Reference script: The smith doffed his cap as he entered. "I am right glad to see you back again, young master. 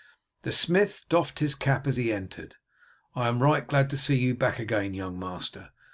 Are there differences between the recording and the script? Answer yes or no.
no